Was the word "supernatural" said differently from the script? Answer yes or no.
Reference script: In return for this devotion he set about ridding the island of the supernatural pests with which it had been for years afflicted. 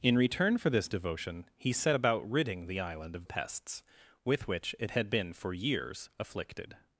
yes